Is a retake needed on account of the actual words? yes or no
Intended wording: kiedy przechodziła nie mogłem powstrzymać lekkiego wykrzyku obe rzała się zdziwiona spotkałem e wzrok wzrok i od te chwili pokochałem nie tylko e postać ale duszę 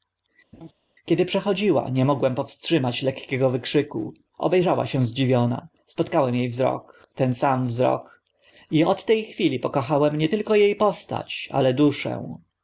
yes